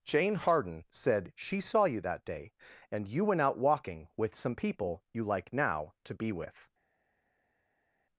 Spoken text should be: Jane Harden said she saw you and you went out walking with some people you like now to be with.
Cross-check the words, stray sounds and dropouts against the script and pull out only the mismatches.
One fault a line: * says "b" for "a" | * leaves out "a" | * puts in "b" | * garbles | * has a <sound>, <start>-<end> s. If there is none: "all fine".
* puts in "that day"